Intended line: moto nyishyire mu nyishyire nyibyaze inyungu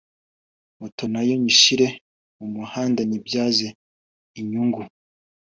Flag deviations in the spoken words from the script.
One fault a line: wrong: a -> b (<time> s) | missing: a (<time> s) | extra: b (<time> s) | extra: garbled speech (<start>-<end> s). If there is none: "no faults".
extra: nayo (1.1 s)
wrong: nyishyire -> muhanda (2.6 s)